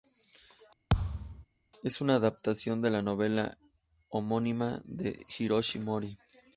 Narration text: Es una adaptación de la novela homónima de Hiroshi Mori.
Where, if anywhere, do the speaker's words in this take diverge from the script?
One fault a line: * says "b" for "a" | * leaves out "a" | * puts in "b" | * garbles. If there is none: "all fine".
all fine